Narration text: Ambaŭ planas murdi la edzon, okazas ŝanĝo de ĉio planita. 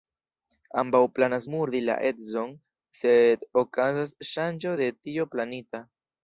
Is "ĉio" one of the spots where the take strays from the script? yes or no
yes